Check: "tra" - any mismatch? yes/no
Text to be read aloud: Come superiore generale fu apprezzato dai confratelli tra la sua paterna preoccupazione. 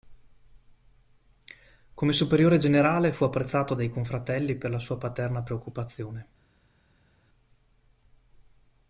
yes